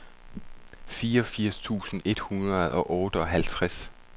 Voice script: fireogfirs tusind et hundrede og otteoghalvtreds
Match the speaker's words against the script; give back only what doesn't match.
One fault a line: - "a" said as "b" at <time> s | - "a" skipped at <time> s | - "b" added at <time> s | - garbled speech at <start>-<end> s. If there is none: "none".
none